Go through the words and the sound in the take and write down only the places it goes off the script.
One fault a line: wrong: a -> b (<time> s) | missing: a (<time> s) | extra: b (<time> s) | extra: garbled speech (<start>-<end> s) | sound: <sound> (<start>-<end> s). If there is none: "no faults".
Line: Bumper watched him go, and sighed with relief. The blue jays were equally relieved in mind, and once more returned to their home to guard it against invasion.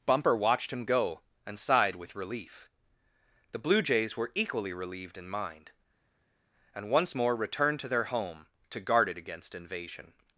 no faults